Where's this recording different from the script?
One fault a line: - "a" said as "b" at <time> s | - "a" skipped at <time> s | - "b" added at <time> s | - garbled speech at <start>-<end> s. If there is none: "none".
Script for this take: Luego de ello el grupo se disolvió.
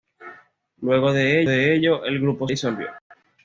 - "de" added at 1.5 s
- "se" skipped at 2.5 s